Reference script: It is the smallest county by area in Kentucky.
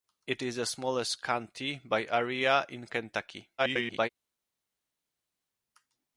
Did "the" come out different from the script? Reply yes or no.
no